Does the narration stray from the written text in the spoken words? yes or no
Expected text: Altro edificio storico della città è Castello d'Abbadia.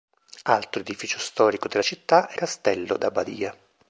no